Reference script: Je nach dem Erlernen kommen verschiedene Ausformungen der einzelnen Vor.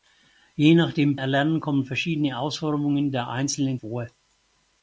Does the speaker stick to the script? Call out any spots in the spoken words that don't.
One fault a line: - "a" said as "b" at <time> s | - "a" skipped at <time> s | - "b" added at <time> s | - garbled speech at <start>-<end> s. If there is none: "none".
none